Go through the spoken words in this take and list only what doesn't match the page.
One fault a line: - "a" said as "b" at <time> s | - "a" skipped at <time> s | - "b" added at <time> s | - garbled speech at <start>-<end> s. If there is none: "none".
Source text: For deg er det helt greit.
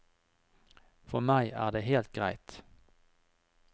- "deg" said as "meg" at 1.3 s